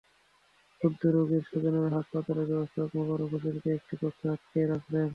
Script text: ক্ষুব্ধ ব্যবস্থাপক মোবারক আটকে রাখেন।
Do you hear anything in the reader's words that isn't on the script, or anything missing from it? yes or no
yes